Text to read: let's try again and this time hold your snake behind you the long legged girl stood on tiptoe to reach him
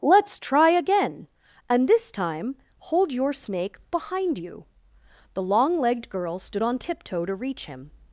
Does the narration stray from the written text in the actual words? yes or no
no